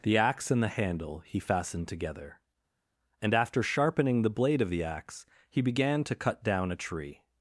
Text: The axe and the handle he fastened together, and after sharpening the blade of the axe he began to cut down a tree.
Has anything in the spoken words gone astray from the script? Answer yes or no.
no